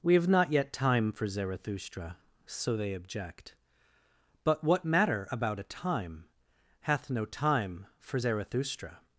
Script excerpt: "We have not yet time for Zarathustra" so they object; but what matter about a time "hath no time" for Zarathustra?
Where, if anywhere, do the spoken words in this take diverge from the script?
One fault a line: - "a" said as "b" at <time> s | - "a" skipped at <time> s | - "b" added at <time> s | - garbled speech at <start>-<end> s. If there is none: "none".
none